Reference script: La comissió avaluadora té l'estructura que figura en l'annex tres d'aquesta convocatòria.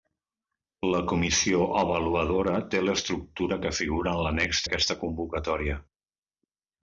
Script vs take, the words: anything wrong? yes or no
yes